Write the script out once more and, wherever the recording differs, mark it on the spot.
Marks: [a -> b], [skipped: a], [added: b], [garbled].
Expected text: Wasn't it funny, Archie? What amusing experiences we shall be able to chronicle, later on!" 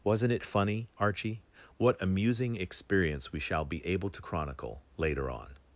Wasn't it funny, Archie? What amusing [experiences -> experience] we shall be able to chronicle, later on!"